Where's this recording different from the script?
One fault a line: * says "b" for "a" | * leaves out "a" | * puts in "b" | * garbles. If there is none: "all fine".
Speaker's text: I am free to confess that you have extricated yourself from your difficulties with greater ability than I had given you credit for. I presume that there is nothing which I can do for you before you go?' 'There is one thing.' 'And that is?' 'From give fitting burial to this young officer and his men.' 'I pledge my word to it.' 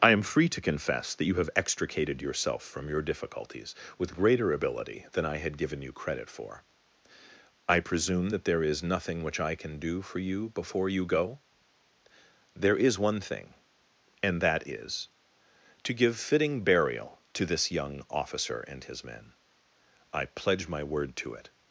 * says "To" for "From"